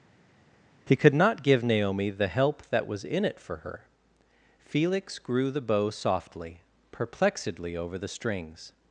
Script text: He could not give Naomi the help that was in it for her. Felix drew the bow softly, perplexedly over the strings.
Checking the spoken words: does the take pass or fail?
fail